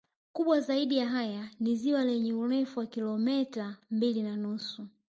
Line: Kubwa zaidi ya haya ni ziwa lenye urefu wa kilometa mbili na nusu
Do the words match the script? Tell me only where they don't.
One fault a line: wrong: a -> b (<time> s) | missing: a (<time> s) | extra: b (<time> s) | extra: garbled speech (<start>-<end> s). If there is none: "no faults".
no faults